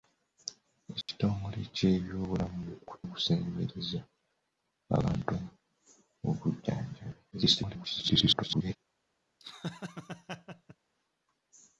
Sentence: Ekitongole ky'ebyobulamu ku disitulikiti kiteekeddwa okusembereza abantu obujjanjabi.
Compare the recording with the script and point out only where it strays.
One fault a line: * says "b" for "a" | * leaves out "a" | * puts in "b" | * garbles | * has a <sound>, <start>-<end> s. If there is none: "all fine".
* has a dropout, 1.0-1.1 s
* leaves out "disitulikiti kiteekeddwa"
* garbles
* has a laugh, 9.4-10.8 s